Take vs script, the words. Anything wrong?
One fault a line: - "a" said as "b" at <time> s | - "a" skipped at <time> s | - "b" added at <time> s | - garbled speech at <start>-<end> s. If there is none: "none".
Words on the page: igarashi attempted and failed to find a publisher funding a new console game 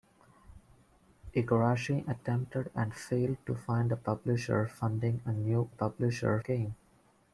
- "console" said as "publisher" at 5.7 s